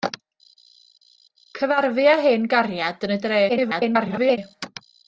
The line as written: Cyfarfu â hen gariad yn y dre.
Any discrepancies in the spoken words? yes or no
yes